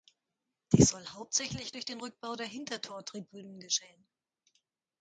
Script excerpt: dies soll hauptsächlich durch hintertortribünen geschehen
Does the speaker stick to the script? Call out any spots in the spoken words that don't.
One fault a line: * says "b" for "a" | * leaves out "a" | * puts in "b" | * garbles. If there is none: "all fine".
* puts in "den rückbau der"